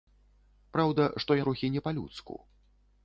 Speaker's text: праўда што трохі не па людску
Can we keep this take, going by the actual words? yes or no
yes